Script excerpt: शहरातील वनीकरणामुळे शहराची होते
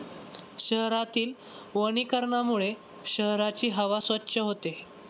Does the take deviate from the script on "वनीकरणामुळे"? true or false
false